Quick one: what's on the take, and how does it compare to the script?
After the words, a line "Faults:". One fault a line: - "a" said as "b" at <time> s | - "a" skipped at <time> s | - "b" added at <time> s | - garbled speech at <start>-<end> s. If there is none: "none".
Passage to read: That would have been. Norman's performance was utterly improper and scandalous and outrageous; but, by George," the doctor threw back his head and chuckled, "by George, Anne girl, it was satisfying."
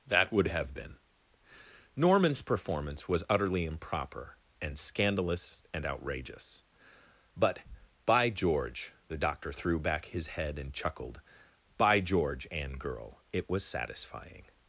That would have been. Norman's performance was utterly improper and scandalous and outrageous; but, by George," the doctor threw back his head and chuckled, "by George, Anne girl, it was satisfying."
Faults:
none